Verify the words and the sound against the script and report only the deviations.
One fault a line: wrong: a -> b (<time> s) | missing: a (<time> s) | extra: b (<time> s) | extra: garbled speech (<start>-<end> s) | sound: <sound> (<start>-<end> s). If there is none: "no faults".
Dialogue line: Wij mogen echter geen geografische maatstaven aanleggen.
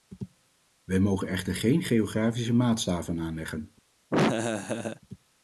sound: laugh (4.1-5.0 s)